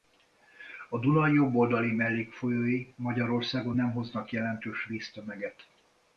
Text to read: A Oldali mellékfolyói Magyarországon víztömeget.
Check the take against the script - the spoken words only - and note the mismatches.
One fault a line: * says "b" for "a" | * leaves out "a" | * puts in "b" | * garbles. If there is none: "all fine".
* puts in "Duna jobb"
* puts in "nem hoznak jelentős"